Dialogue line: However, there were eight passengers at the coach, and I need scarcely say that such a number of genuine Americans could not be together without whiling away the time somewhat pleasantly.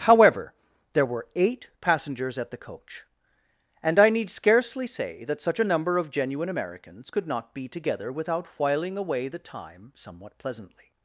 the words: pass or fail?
pass